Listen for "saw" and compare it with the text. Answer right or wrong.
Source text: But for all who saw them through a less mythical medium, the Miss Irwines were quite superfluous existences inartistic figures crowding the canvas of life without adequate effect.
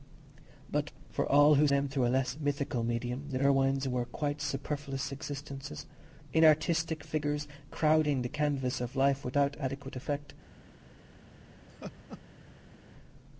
wrong